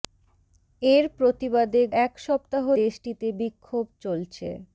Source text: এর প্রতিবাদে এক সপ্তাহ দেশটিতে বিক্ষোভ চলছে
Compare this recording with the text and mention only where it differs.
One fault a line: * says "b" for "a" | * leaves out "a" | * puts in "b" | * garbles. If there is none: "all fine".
all fine